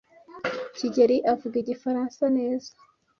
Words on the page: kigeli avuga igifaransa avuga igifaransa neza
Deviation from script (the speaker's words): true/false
true